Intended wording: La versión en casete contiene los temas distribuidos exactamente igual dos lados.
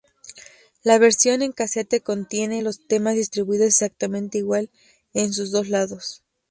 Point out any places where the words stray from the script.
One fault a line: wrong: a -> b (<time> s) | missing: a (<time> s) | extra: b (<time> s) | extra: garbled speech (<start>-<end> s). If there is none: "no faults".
extra: en sus (5.1 s)